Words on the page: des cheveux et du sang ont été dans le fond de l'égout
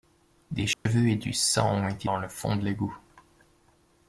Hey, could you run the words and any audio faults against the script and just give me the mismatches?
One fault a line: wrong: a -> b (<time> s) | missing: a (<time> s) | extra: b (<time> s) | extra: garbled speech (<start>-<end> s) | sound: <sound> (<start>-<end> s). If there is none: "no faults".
sound: dropout (0.7-0.9 s)